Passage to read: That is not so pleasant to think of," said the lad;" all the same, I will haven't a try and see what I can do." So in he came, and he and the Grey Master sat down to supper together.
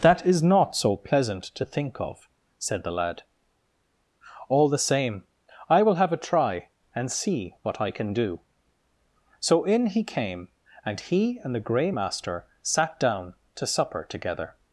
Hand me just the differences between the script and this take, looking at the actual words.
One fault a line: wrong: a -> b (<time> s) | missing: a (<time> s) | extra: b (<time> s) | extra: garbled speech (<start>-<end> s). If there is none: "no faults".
wrong: haven't -> have (6.0 s)